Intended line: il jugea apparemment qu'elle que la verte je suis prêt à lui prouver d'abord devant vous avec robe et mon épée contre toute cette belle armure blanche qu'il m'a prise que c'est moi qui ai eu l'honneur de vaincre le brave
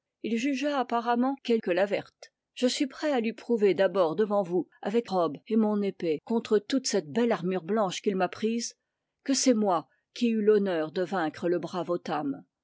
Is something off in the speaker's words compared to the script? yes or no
no